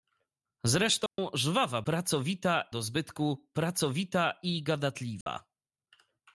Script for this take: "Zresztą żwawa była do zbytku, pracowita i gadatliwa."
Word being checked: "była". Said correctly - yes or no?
no